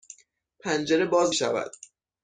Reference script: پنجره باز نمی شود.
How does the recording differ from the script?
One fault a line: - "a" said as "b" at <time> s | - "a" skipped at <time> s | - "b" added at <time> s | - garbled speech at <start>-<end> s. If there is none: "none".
- "نمی" skipped at 1.4 s